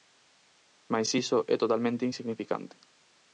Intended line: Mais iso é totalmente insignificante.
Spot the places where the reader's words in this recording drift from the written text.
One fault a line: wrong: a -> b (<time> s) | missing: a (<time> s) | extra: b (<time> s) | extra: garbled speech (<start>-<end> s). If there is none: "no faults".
no faults